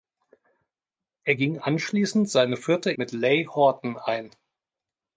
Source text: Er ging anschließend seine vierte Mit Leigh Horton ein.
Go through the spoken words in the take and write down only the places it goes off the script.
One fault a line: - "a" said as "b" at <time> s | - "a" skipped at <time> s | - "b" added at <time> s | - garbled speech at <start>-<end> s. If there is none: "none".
none